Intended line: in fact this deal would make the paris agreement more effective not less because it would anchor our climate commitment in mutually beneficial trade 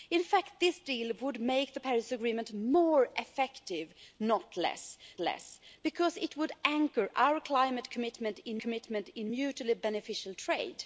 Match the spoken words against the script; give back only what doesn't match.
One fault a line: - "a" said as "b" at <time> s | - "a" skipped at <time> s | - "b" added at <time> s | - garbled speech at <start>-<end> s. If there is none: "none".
- "less" added at 5.2 s
- "commitment in" added at 8.6 s